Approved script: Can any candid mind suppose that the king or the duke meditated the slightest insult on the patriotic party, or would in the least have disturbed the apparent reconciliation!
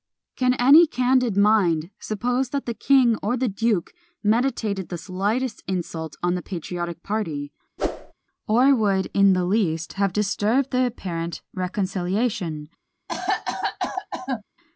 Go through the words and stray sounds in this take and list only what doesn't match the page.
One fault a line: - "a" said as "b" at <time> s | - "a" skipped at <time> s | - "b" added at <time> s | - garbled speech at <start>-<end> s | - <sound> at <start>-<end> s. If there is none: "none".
- whoosh at 7.8-8.1 s
- cough at 13.1-14.4 s